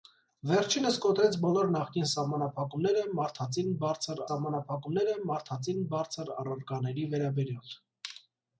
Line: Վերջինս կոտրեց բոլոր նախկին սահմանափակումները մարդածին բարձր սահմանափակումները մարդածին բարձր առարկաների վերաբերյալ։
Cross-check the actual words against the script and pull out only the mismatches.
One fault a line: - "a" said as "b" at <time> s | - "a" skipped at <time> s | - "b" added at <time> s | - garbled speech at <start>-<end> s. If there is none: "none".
none